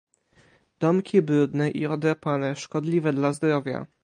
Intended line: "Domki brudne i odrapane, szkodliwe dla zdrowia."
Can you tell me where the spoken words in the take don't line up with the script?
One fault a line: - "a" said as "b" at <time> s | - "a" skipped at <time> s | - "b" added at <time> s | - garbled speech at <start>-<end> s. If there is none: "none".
none